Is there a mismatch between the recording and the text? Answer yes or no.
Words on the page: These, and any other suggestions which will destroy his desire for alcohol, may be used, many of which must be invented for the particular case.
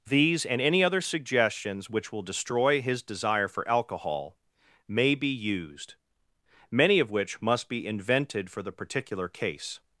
no